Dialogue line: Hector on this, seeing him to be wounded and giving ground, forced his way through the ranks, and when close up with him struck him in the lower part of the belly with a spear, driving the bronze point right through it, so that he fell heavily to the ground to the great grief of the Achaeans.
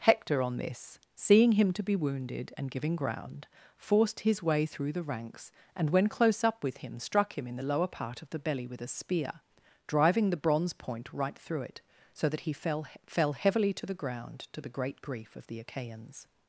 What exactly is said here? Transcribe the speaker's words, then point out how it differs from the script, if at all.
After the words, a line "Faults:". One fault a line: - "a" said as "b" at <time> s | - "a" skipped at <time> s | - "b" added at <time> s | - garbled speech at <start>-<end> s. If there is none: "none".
Hector on this, seeing him to be wounded and giving ground, forced his way through the ranks, and when close up with him struck him in the lower part of the belly with a spear, driving the bronze point right through it, so that he fell fell heavily to the ground to the great grief of the Achaeans.
Faults:
- "fell" added at 13.1 s